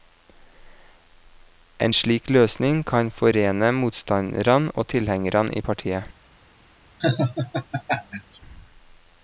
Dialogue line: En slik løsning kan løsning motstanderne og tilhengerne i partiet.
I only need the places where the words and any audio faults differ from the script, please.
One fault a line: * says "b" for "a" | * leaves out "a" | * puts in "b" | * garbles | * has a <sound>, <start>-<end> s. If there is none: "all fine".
* says "forene" for "løsning"
* has a laugh, 7.0-8.4 s